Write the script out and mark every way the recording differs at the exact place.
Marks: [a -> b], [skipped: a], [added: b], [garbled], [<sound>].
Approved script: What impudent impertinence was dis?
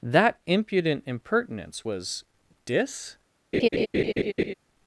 [What -> That] impudent impertinence was dis? [laugh]